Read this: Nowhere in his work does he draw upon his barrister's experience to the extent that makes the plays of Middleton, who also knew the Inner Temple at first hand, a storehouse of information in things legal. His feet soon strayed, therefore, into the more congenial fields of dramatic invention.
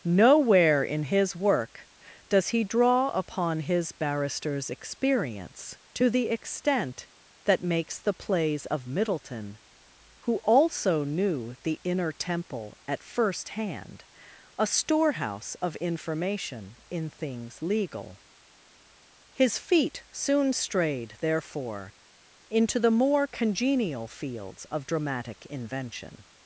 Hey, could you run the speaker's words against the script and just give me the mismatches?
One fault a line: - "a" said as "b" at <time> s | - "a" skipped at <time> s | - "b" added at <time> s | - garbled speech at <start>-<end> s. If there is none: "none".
none